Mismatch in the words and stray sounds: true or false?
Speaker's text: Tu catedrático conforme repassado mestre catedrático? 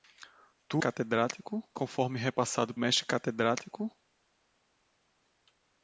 false